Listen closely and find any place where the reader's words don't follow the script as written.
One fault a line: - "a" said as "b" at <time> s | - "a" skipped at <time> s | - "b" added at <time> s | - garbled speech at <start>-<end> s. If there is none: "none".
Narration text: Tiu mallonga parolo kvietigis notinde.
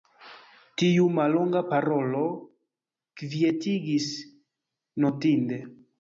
none